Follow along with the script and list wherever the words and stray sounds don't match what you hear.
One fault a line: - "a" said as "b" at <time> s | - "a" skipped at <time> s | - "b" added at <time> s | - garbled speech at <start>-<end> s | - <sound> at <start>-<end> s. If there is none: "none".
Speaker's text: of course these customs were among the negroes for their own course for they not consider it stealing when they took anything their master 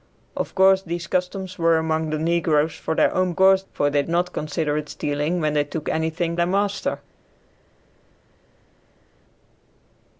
none